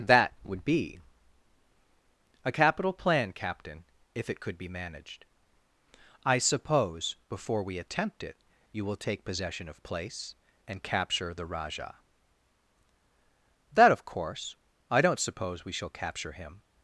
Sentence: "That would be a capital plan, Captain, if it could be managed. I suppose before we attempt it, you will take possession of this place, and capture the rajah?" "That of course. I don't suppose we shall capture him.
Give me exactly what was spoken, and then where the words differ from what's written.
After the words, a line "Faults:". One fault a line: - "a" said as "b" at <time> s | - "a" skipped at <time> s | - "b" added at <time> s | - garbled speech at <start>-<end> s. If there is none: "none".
"That would be a capital plan, Captain, if it could be managed. I suppose before we attempt it, you will take possession of place, and capture the rajah?" "That of course. I don't suppose we shall capture him.
Faults:
- "this" skipped at 9.8 s